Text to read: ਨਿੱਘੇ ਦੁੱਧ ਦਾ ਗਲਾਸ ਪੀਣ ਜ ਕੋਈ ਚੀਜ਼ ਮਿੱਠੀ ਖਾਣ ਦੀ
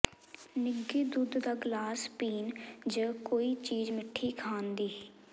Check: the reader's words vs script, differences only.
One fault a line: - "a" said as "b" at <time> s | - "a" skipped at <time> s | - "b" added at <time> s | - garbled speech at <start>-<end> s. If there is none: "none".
none